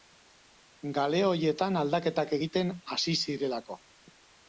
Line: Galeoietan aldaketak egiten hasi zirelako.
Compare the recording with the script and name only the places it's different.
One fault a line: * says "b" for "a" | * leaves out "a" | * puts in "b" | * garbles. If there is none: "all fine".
all fine